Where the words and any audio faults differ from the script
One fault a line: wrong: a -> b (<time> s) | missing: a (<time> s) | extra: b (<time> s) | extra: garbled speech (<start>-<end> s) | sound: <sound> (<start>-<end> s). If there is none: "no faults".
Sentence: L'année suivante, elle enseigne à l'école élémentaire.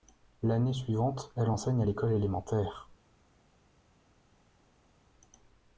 no faults